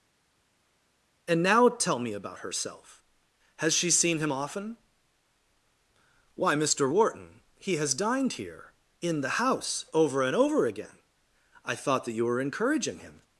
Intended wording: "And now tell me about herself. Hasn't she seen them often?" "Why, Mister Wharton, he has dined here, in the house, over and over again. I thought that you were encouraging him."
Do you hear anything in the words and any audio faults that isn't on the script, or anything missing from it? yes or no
yes